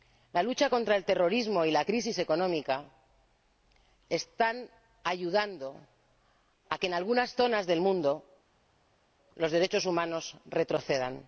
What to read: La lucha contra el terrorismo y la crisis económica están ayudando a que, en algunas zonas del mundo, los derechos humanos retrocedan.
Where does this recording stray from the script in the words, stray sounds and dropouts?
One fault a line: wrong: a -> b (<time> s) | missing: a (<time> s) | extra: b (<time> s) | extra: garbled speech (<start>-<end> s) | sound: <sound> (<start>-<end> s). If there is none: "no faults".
no faults